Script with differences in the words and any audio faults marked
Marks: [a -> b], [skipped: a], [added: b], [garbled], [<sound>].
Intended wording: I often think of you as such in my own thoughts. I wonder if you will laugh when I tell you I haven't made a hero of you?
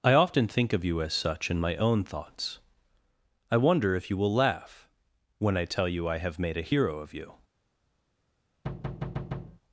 I often think of you as such in my own thoughts. I wonder if you will laugh when I tell you I [haven't -> have] made a hero of you? [thud]